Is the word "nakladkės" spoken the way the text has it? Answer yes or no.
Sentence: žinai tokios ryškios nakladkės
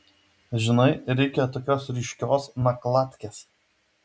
yes